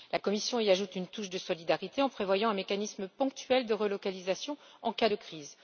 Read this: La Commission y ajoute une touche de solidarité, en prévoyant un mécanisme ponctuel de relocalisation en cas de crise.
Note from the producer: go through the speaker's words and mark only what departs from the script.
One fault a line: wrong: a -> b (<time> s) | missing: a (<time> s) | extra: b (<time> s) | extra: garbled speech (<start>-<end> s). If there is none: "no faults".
no faults